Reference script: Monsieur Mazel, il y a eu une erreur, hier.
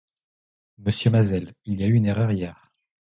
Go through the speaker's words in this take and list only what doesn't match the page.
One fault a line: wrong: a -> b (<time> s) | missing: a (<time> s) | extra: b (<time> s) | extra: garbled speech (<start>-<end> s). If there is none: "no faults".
no faults